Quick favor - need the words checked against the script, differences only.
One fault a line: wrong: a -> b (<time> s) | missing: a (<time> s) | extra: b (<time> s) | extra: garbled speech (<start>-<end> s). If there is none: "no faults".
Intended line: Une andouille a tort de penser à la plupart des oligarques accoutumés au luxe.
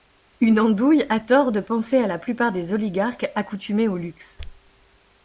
no faults